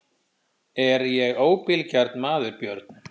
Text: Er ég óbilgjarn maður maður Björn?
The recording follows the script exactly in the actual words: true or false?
false